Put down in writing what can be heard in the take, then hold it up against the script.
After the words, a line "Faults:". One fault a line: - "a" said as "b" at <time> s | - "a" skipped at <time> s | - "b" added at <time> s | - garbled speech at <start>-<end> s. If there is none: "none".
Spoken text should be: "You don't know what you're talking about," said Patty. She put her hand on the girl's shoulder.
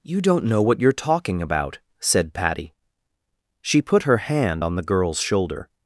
"You don't know what you're talking about," said Patty. She put her hand on the girl's shoulder.
Faults:
none